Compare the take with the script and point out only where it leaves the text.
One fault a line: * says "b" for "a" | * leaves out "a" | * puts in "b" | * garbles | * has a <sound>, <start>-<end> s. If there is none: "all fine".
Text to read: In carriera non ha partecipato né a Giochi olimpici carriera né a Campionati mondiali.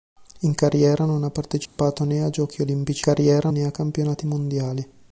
* has a dropout, 1.7-1.8 s